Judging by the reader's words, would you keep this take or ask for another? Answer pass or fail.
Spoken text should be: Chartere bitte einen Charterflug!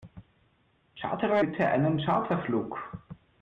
pass